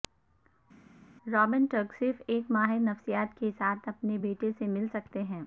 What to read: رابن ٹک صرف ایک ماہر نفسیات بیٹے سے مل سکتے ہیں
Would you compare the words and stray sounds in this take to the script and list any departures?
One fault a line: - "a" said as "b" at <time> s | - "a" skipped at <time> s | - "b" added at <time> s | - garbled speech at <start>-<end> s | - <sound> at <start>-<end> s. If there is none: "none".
- "کے ساتھ اپنے" added at 3.4 s